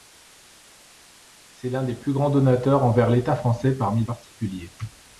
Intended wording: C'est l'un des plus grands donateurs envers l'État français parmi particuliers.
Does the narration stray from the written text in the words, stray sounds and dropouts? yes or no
no